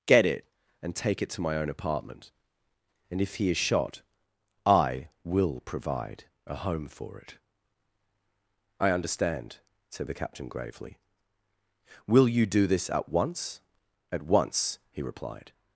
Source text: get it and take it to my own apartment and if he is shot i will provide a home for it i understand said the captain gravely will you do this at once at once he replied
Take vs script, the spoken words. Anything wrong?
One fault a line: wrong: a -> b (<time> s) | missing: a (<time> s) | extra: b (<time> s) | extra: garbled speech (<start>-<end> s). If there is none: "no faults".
no faults